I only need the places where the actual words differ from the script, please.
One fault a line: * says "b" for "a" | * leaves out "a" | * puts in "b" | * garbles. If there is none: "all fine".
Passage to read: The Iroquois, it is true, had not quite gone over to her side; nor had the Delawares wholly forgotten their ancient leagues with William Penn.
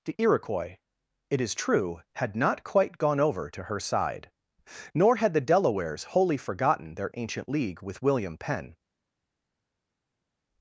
* says "league" for "leagues"